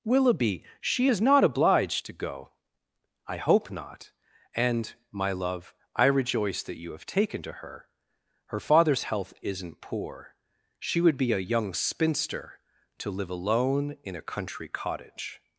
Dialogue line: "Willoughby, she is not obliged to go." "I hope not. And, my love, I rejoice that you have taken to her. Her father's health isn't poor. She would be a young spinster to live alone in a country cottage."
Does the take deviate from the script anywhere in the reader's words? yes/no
no